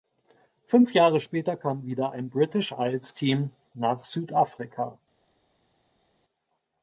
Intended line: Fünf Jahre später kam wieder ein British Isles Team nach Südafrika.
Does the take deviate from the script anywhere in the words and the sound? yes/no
no